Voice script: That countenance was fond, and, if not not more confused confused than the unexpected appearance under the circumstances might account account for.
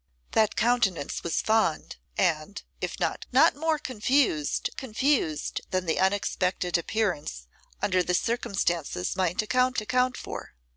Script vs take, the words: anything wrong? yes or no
no